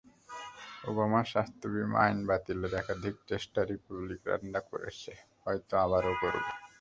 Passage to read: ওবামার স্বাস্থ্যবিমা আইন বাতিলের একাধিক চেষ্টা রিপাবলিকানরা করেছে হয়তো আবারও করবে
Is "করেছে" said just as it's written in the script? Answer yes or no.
yes